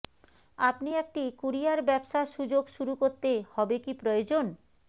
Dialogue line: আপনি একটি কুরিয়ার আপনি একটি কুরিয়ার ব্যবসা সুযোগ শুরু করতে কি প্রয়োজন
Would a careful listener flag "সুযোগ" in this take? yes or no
no